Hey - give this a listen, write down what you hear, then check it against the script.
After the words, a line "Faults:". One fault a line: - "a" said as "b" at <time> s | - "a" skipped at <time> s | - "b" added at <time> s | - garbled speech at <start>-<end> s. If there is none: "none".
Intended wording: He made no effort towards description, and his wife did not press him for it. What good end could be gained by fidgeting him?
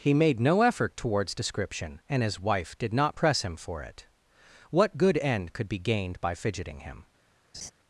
He made no effort towards description, and his wife did not press him for it. What good end could be gained by fidgeting him?
Faults:
none